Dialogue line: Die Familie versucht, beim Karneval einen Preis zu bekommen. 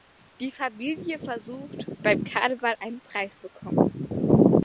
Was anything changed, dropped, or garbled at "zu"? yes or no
yes